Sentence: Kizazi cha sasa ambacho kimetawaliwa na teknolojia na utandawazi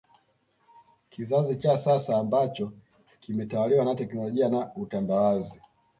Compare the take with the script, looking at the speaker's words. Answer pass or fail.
pass